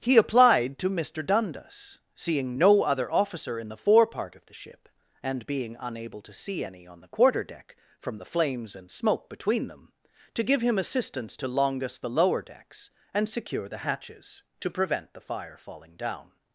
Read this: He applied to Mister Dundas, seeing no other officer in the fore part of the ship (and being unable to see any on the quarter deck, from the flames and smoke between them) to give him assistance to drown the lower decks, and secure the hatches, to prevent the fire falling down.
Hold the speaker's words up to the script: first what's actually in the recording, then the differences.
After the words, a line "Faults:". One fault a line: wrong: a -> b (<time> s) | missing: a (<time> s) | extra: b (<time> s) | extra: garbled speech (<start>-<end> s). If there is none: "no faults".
He applied to Mister Dundas, seeing no other officer in the fore part of the ship (and being unable to see any on the quarter deck, from the flames and smoke between them) to give him assistance to longus the lower decks, and secure the hatches, to prevent the fire falling down.
Faults:
wrong: drown -> longus (11.5 s)